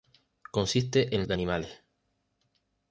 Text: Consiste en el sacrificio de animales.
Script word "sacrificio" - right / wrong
wrong